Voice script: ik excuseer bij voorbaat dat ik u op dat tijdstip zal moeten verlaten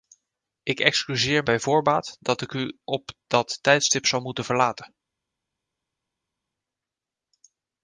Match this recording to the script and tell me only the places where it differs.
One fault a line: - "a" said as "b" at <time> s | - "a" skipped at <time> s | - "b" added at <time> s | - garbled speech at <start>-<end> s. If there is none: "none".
none